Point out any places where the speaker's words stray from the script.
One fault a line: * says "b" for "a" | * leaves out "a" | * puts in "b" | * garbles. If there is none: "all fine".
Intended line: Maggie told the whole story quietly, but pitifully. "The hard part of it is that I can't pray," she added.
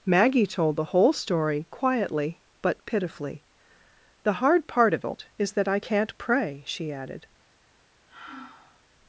all fine